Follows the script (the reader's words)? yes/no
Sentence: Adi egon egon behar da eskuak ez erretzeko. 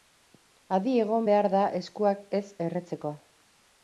no